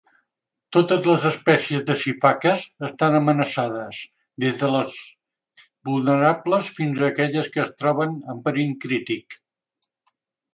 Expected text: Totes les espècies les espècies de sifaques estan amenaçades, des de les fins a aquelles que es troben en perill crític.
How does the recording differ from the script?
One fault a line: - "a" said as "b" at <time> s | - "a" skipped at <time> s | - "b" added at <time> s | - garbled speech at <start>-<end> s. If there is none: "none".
- "les espècies" skipped at 1.8 s
- "vulnerables" added at 5.9 s